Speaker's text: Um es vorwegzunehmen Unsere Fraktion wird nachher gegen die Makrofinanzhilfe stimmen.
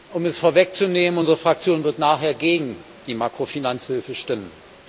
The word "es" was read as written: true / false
true